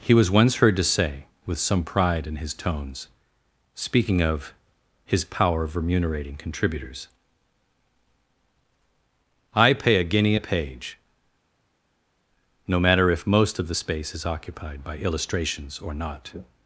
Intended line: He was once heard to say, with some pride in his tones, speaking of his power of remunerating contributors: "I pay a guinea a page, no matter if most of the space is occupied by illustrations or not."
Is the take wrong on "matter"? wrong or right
right